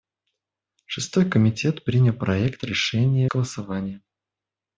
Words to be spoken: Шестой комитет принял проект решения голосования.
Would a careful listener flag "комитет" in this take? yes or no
no